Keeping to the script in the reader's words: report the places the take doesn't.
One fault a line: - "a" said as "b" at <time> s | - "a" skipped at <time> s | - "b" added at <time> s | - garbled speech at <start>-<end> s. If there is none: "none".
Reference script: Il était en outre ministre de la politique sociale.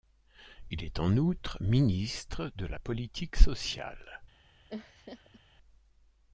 - "était" said as "est" at 0.8 s